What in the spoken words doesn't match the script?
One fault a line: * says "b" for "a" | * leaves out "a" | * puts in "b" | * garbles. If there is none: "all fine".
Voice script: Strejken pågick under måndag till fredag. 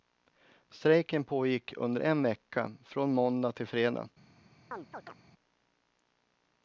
* puts in "en vecka från"